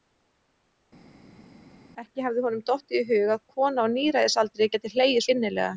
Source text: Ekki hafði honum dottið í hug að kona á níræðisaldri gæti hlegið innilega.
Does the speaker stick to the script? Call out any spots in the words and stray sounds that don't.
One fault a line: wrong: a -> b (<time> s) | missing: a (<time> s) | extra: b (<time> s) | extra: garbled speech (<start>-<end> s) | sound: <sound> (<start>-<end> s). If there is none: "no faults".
no faults